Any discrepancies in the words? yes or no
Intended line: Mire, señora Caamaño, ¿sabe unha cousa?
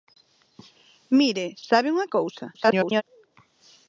yes